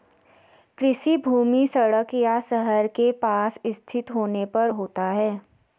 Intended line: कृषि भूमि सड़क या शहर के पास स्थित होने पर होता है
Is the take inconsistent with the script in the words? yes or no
no